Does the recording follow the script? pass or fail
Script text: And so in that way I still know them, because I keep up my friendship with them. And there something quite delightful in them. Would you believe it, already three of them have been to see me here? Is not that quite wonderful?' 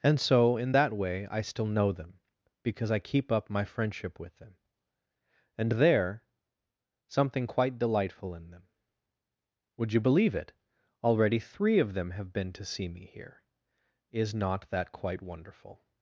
pass